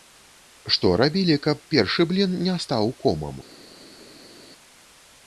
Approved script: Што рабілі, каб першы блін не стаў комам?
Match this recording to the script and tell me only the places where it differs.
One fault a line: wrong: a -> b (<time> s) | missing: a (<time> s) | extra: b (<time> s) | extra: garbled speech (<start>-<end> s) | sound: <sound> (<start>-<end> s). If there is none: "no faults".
no faults